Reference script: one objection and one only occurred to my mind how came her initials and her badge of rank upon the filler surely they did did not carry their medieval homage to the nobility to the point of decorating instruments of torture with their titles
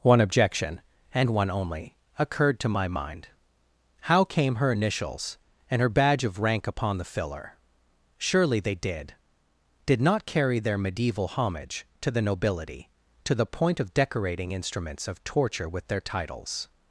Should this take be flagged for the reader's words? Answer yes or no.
no